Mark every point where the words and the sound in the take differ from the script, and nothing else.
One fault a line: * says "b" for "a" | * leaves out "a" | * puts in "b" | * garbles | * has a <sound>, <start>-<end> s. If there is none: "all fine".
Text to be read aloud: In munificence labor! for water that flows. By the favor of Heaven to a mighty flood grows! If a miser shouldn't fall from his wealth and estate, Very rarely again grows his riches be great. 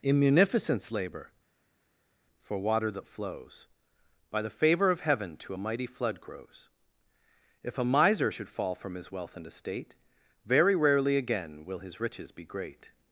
* says "should" for "shouldn't"
* says "will" for "grows"